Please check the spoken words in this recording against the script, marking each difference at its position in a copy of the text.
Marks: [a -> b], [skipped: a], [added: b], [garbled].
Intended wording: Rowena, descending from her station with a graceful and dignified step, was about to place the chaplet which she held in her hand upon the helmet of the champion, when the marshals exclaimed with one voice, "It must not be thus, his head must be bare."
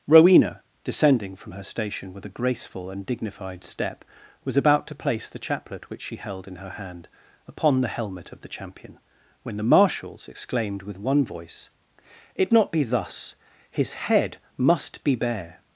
Rowena, descending from her station with a graceful and dignified step, was about to place the chaplet which she held in her hand upon the helmet of the champion, when the marshals exclaimed with one voice, "It [skipped: must] not be thus, his head must be bare."